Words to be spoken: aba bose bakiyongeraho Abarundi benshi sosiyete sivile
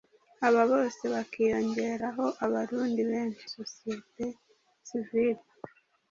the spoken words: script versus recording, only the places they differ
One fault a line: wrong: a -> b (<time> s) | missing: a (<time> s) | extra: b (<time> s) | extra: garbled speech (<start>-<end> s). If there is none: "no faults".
no faults